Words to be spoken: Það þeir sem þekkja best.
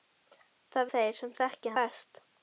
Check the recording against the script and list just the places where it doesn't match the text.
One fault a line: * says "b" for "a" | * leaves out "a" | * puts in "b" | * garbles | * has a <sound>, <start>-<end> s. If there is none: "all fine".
all fine